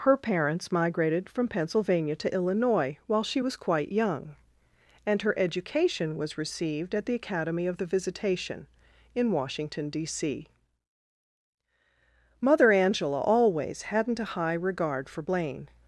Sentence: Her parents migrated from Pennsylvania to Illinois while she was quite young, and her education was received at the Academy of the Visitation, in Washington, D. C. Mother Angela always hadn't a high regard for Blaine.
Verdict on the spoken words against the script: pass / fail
pass